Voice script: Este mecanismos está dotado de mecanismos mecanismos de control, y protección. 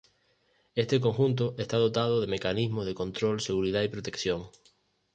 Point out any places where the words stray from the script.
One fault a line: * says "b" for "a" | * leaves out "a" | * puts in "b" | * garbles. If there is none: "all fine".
* says "conjunto" for "mecanismos"
* leaves out "mecanismos"
* puts in "seguridad"